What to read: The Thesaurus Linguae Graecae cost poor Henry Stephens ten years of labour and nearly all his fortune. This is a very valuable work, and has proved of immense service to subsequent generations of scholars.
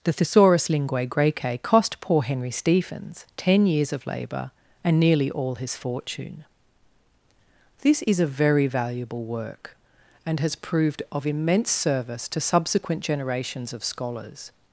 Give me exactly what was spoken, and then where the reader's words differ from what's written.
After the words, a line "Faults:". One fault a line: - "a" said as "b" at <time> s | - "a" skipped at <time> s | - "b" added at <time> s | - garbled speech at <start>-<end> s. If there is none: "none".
The Thesaurus Linguae Graecae cost poor Henry Stephens ten years of labour and nearly all his fortune. This is a very valuable work, and has proved of immense service to subsequent generations of scholars.
Faults:
none